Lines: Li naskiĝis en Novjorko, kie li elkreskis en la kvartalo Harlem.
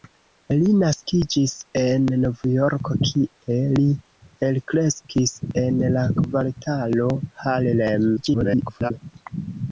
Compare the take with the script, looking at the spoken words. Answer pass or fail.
fail